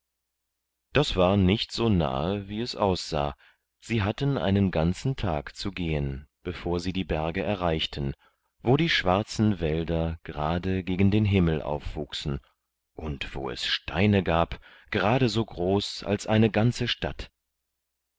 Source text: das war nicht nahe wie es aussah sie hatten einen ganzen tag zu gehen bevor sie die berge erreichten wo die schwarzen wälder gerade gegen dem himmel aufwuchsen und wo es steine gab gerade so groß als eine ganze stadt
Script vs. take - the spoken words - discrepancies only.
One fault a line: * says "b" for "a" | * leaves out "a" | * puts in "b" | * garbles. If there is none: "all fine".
* puts in "so"
* says "den" for "dem"